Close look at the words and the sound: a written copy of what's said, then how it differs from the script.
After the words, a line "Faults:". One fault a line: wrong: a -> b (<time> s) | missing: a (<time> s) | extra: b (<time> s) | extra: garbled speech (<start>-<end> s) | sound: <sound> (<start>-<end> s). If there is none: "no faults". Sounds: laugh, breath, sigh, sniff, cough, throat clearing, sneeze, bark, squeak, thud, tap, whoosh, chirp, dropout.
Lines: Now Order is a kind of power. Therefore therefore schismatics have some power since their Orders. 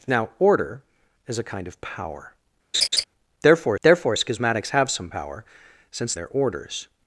Now Order is a kind of power. Therefore therefore schismatics have some power since their Orders.
Faults:
sound: laugh (2.7-3.0 s)